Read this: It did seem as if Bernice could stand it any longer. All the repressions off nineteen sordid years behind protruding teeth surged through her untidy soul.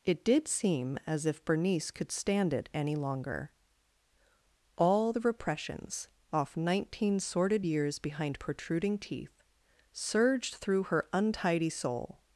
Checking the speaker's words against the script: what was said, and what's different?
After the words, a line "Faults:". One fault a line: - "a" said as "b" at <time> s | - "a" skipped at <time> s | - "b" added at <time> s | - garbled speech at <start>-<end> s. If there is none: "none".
It did seem as if Bernice could stand it any longer. All the repressions off nineteen sordid years behind protruding teeth surged through her untidy soul.
Faults:
none